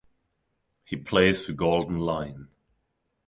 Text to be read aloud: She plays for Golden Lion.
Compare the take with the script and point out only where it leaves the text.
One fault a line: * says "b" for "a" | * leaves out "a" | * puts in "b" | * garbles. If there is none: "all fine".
* says "He" for "She"